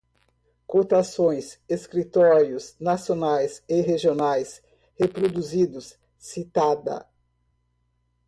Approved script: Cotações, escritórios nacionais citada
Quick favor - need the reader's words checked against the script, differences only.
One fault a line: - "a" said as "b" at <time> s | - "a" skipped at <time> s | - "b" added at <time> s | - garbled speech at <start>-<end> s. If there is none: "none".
- "e regionais reproduzidos" added at 3.7 s